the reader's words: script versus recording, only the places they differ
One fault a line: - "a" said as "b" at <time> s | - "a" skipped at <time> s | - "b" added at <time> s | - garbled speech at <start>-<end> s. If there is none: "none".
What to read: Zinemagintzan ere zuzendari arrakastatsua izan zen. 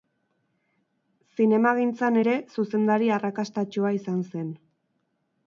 none